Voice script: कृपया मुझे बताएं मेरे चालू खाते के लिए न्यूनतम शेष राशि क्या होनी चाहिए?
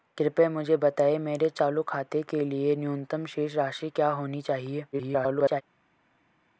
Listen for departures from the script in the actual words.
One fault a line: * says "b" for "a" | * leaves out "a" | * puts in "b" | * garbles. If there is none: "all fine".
* garbles